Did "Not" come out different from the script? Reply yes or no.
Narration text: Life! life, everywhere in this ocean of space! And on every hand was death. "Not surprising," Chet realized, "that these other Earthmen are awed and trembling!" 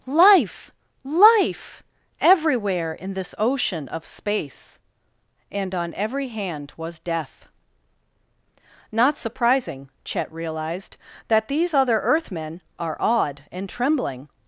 no